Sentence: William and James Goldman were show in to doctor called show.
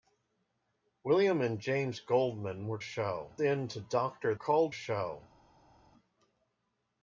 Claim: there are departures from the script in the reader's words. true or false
false